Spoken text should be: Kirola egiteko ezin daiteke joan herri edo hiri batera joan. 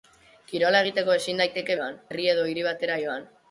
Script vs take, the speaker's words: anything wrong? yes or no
no